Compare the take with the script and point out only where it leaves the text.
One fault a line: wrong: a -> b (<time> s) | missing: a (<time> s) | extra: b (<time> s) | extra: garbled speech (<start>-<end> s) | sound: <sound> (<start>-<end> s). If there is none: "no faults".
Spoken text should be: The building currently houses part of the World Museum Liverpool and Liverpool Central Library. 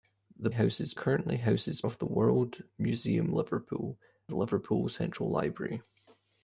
wrong: building -> houses (0.5 s)
missing: part (1.8 s)
missing: and (4.0 s)